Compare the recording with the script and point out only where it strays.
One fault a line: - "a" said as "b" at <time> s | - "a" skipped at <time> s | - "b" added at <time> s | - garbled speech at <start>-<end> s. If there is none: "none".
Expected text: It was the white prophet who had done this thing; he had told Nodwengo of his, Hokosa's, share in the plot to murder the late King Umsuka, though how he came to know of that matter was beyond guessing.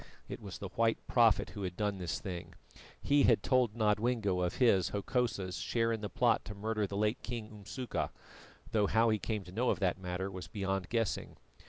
none